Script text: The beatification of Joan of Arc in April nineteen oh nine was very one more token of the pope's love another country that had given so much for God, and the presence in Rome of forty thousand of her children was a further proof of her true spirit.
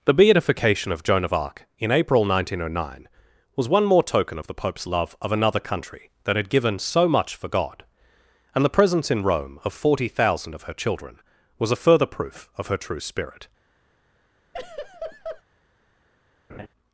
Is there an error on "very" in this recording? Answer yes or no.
yes